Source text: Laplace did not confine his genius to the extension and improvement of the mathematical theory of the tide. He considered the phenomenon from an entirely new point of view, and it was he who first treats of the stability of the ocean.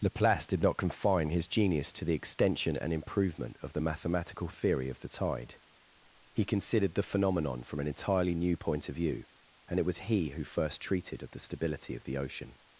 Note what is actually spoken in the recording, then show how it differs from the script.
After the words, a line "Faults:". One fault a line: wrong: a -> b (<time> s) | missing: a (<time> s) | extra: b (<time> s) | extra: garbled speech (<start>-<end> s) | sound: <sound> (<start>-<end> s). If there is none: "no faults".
Laplace did not confine his genius to the extension and improvement of the mathematical theory of the tide. He considered the phenomenon from an entirely new point of view, and it was he who first treated of the stability of the ocean.
Faults:
wrong: treats -> treated (10.8 s)